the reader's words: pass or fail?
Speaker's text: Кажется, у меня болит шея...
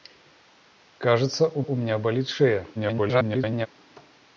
fail